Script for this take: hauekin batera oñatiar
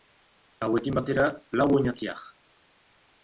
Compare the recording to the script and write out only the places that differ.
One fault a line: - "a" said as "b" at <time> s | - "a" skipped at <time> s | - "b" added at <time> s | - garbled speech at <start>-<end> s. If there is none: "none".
- "lau" added at 1.5 s